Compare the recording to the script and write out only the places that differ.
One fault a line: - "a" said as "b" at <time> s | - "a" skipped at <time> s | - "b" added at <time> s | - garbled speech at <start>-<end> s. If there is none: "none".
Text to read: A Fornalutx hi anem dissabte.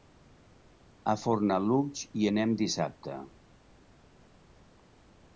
none